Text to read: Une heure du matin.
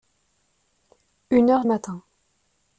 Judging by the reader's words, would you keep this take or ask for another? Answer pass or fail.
fail